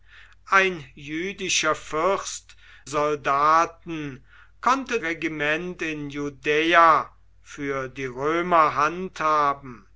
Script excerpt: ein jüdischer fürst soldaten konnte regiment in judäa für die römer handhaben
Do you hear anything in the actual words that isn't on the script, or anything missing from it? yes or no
no